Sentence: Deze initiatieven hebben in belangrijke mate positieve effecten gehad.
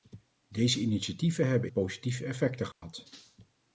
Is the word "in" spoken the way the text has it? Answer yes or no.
no